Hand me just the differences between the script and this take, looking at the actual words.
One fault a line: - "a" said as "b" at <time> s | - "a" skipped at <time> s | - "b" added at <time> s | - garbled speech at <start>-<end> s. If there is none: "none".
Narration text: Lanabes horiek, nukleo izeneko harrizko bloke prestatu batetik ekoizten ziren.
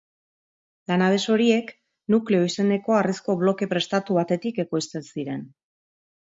none